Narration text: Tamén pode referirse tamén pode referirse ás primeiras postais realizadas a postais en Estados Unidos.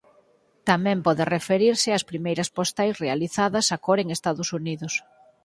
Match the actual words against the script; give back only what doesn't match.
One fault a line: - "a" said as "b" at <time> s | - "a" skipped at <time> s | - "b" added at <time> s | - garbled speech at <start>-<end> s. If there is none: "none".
- "tamén pode referirse" skipped at 1.9 s
- "postais" said as "cor" at 3.9 s